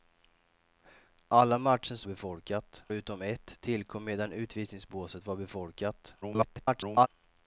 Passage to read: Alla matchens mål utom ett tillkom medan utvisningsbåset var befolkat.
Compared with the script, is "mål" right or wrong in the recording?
wrong